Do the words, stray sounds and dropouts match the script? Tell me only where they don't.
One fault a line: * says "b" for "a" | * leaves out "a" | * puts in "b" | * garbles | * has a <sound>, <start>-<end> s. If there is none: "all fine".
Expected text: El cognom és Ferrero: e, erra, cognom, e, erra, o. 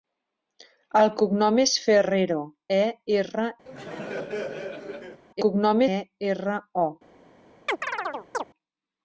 * has a laugh, 3.7-5.2 s
* has a chirp, 7.7-8.4 s